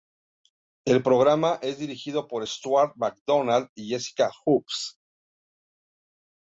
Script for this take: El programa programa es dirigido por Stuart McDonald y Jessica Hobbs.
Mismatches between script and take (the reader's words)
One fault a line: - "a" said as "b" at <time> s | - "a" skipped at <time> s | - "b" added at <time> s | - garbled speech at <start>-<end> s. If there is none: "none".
- "programa" skipped at 1.6 s